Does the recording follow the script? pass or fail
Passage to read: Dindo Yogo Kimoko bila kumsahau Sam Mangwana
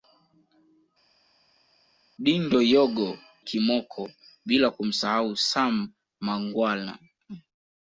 pass